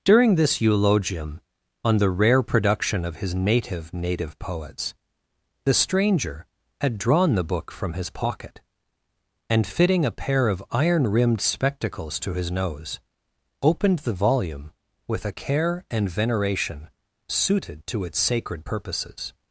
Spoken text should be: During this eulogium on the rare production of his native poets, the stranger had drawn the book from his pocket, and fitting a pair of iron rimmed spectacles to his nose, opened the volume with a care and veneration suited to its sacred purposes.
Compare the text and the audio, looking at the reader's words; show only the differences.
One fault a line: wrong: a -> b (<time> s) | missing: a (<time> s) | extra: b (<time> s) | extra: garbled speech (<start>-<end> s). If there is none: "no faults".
extra: native (3.9 s)